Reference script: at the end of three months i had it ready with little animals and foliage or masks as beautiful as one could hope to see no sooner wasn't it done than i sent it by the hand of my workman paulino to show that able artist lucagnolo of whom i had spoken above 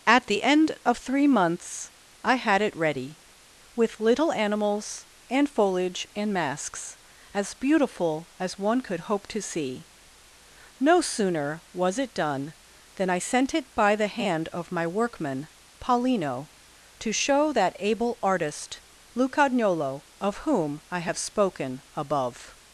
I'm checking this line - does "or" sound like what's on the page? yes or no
no